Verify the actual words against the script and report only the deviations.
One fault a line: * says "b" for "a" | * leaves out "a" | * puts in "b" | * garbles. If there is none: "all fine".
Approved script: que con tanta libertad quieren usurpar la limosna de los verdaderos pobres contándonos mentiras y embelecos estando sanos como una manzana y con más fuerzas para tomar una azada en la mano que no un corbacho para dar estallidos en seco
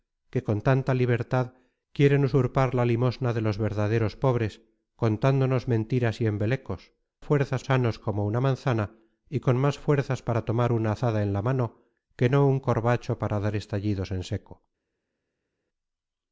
* says "fuerzas" for "estando"